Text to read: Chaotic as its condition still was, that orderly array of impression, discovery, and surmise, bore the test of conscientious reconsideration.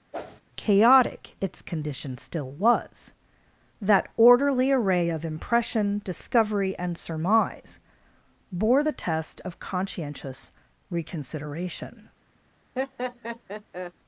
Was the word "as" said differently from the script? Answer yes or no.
yes